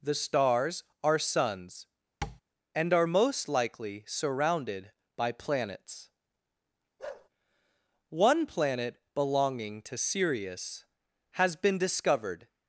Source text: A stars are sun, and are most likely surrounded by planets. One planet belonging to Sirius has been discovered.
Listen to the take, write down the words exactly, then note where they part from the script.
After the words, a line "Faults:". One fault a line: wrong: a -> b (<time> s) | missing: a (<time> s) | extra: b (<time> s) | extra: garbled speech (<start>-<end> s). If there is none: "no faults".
The stars are suns, and are most likely surrounded by planets. One planet belonging to Sirius has been discovered.
Faults:
wrong: A -> The (0.0 s)
wrong: sun -> suns (1.2 s)